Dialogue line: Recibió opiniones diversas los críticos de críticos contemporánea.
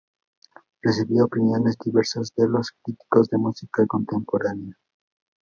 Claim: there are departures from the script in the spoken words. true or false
true